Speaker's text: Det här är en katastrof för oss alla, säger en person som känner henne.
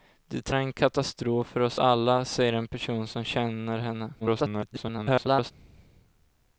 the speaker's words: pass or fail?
fail